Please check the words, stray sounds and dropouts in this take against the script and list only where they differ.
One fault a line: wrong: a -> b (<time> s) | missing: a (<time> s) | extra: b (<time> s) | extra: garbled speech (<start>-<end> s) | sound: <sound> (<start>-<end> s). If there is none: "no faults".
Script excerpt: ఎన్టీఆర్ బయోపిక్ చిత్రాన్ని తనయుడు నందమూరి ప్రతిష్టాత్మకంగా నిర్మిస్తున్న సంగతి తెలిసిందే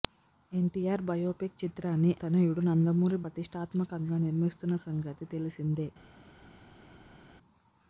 no faults